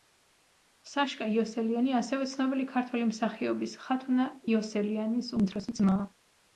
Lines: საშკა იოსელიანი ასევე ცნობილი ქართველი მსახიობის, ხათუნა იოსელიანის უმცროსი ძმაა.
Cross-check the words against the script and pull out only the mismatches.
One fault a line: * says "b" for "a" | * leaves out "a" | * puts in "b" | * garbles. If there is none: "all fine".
all fine